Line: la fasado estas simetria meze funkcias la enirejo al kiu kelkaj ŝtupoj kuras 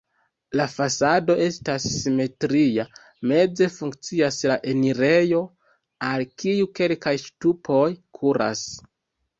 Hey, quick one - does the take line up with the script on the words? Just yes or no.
yes